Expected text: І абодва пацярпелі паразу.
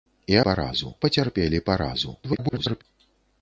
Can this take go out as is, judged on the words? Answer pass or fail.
fail